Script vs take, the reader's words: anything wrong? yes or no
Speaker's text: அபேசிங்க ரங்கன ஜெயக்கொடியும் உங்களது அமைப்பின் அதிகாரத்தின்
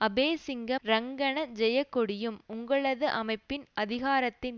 no